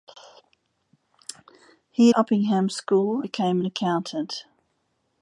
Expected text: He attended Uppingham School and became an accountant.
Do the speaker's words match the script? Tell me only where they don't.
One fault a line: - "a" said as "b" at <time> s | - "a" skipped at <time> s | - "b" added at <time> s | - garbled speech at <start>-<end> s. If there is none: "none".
- "attended" skipped at 2.1 s
- "and" skipped at 3.2 s